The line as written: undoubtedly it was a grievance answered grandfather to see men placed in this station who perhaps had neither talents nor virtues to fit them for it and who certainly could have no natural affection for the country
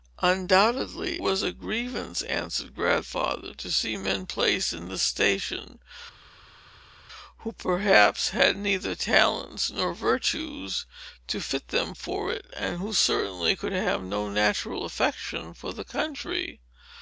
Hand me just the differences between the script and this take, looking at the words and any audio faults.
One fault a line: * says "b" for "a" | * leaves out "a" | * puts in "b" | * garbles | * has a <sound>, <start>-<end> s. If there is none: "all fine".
* leaves out "it"